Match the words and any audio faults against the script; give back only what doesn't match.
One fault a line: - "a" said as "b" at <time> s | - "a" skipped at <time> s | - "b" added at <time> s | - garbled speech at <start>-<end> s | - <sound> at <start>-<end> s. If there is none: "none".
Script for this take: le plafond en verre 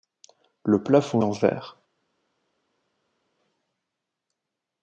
none